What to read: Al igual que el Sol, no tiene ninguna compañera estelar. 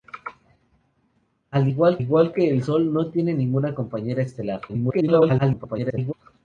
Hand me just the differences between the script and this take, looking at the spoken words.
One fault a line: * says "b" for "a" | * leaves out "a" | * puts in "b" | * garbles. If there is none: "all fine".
* puts in "igual"
* garbles